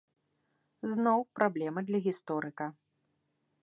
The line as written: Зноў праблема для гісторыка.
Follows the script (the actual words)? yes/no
yes